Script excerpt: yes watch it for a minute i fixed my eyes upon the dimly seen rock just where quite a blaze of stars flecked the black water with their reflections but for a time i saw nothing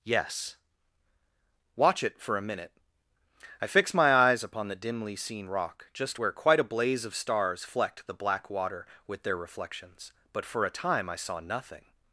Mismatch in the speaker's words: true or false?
true